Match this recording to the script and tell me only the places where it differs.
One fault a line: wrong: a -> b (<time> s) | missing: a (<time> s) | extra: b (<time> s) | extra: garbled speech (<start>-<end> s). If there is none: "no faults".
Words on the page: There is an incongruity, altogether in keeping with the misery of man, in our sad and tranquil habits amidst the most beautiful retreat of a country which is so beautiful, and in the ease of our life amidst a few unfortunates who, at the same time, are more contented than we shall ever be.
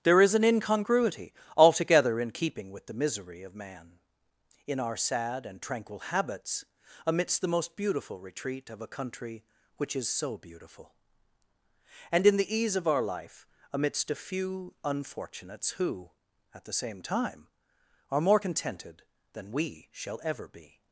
no faults